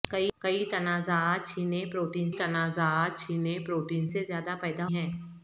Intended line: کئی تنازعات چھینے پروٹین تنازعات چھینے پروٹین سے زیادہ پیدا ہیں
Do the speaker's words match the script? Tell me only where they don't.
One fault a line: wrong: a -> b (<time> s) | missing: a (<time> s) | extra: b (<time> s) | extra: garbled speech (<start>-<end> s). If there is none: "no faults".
no faults